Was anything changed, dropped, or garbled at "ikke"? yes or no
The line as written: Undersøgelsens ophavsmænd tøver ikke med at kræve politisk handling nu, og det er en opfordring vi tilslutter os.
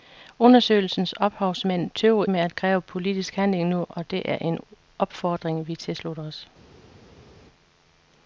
yes